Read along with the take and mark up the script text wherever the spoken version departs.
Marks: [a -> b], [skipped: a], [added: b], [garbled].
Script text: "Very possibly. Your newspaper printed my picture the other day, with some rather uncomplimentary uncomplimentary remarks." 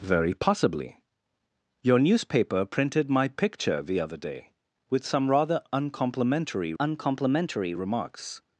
"Very possibly. Your newspaper printed my picture the other day, with some rather uncomplimentary uncomplimentary remarks."